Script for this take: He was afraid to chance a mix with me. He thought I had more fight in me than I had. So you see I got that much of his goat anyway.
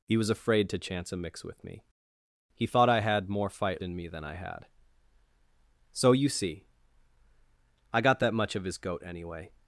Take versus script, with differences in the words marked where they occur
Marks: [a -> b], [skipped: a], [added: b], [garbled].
He was afraid to chance a mix with me. He thought I had more fight in me than I had. So you see I got that much of his goat anyway.